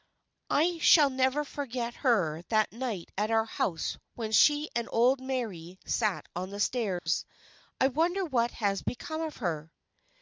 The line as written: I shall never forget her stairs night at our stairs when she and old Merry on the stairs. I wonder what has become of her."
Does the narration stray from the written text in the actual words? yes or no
yes